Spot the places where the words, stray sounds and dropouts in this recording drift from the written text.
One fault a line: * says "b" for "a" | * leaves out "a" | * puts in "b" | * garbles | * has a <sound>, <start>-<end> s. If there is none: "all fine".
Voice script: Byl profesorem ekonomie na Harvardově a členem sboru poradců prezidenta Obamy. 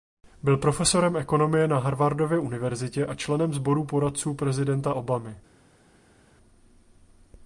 * puts in "univerzitě"